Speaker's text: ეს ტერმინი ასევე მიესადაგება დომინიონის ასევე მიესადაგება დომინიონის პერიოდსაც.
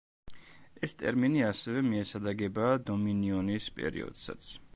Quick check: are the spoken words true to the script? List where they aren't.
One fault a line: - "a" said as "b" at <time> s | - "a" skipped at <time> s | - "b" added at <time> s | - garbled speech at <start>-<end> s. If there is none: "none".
- "ასევე მიესადაგება დომინიონის" skipped at 3.7 s